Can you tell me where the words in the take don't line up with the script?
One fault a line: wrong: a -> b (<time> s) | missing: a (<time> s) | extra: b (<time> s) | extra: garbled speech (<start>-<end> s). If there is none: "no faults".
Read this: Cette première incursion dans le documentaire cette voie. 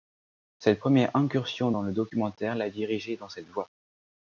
extra: l'a dirigé dans (2.5 s)